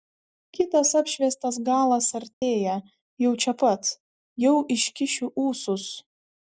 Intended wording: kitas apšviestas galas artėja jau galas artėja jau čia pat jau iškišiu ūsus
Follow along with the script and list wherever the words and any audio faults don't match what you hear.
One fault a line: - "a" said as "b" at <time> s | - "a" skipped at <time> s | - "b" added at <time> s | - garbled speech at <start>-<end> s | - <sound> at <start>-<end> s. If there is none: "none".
- dropout at 2.3-2.4 s
- "galas artėja jau" skipped at 3.4 s